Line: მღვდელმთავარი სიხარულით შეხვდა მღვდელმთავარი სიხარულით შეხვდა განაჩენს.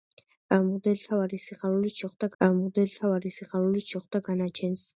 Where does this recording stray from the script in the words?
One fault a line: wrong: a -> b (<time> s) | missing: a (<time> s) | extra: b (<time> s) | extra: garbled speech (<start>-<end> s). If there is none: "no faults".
no faults